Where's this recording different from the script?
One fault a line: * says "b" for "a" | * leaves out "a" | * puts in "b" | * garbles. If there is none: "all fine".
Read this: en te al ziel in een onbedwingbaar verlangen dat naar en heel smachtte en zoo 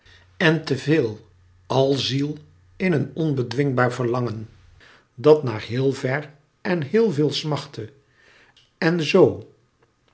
* puts in "veel"
* puts in "heel ver"
* puts in "veel"